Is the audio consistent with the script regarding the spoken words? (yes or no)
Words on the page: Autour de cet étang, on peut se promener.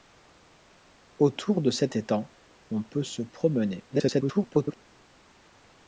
no